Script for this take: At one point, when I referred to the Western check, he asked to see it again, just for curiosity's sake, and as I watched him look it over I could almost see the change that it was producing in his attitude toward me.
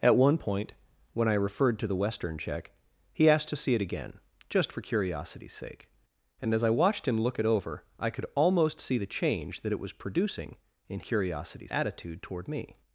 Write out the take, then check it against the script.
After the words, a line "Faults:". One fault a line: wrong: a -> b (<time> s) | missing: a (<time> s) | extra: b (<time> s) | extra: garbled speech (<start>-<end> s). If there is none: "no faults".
At one point, when I referred to the Western check, he asked to see it again, just for curiosity's sake, and as I watched him look it over I could almost see the change that it was producing in curiosity's attitude toward me.
Faults:
wrong: his -> curiosity's (11.0 s)